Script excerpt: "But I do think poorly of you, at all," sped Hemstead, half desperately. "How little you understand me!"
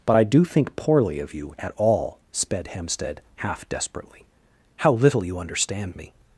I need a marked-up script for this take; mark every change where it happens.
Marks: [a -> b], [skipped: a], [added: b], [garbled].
"But I do think poorly of you, at all," sped Hemstead, half desperately. "How little you understand me!"